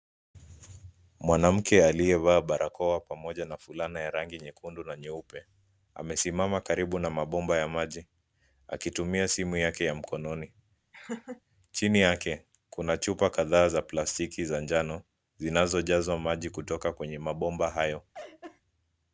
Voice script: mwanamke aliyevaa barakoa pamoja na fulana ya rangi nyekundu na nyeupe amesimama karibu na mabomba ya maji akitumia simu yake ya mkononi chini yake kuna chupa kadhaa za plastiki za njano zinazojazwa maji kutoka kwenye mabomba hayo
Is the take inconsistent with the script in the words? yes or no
no